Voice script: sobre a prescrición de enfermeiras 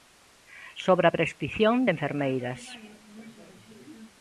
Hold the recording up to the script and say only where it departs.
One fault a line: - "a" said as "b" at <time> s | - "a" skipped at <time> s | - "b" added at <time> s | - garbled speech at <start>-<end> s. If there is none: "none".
none